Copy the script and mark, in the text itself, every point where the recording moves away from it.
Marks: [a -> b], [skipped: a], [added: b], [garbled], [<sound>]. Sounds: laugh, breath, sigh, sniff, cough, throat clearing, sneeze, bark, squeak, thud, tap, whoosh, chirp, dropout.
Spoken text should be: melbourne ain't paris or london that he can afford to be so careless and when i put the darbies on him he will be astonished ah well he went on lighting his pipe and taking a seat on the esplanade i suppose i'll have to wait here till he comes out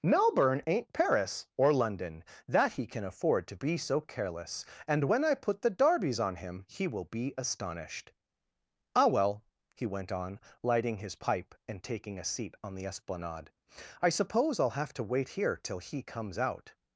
melbourne ain't paris or london that he can afford to be so careless and when i put the darbies on him he will be astonished ah well he went on lighting his pipe and taking a seat on the esplanade i suppose i'll have to wait here till he comes out